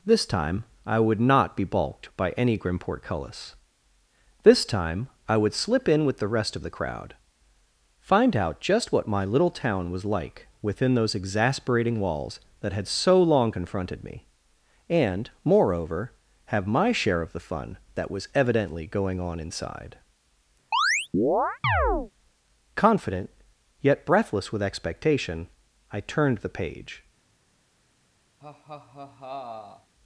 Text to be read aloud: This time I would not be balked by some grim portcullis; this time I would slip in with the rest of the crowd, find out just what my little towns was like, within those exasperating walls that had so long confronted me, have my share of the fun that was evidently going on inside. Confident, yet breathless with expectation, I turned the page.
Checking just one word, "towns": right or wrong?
wrong